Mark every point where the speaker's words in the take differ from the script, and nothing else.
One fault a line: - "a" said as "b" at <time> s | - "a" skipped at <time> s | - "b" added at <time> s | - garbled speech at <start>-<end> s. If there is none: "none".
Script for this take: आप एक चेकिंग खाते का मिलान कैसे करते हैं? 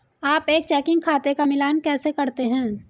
none